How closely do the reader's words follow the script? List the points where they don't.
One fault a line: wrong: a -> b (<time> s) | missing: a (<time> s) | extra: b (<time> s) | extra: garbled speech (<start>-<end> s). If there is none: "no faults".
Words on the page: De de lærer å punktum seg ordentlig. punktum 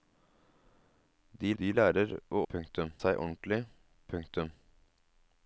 no faults